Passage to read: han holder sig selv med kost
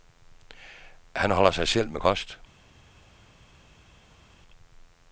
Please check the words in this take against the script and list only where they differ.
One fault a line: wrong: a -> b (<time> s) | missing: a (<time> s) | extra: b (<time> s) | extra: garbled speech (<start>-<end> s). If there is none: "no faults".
no faults